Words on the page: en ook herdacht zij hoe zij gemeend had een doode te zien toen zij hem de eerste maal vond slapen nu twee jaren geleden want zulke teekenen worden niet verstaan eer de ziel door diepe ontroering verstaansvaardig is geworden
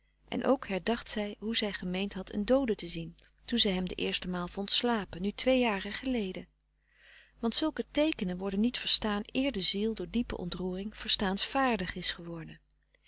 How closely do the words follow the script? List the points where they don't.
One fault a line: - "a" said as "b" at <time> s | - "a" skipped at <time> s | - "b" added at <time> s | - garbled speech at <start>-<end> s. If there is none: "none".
none